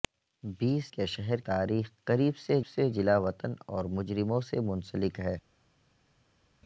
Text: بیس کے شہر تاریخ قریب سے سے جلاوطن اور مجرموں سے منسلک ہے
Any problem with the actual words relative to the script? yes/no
no